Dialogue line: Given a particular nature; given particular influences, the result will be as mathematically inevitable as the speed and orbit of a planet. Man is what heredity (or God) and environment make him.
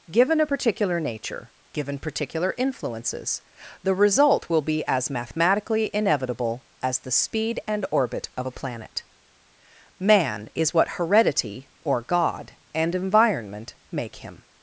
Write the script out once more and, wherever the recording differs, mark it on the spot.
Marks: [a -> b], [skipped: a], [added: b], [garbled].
Given a particular nature; given particular influences, the result will be as mathematically inevitable as the speed and orbit of a planet. Man is what heredity (or God) and environment make him.